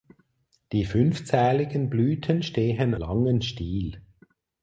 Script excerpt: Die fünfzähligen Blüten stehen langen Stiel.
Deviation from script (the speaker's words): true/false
false